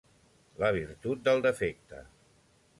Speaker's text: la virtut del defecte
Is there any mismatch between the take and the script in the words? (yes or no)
no